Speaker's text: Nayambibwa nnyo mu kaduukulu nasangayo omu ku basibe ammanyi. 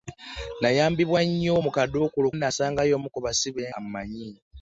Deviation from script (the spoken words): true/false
false